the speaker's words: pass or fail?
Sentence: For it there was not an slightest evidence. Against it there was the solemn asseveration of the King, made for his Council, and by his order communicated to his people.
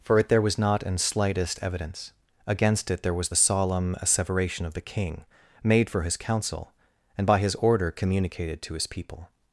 pass